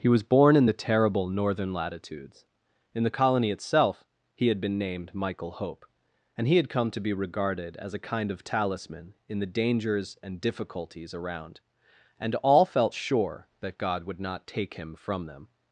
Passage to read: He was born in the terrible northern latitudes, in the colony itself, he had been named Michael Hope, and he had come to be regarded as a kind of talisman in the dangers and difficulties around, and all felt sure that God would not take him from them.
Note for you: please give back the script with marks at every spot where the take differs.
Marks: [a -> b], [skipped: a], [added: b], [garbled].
He was born in the terrible northern latitudes, in the colony itself, he had been named Michael Hope, and he had come to be regarded as a kind of talisman in the dangers and difficulties around, and all felt sure that God would not take him from them.